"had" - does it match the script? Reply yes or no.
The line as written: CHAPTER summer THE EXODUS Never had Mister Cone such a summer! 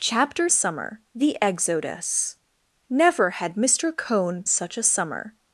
yes